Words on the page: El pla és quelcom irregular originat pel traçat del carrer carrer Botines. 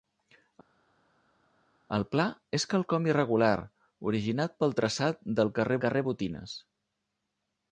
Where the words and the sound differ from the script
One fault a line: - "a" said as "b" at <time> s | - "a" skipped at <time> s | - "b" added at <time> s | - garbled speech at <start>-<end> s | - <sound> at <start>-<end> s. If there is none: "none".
none